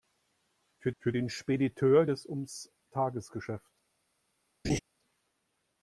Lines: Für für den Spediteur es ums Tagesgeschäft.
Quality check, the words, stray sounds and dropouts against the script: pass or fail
fail